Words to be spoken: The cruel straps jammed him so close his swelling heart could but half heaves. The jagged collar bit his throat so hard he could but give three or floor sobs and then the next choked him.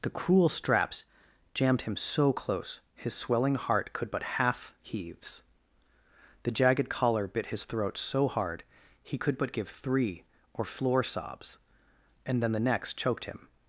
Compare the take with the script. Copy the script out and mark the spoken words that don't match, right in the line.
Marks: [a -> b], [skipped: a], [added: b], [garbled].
The cruel straps jammed him so close his swelling heart could but half heaves. The jagged collar bit his throat so hard he could but give three or floor sobs and then the next choked him.